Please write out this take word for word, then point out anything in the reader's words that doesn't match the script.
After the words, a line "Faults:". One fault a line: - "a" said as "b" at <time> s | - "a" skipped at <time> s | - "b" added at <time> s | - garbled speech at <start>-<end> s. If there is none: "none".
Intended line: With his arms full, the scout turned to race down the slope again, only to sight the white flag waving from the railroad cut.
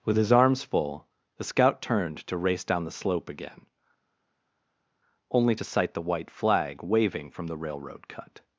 With his arms full, the scout turned to race down the slope again, only to sight the white flag waving from the railroad cut.
Faults:
none